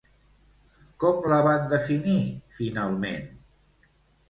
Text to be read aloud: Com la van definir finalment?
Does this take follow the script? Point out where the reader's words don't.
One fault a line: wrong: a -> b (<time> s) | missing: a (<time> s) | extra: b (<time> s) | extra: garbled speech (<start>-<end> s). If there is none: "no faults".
no faults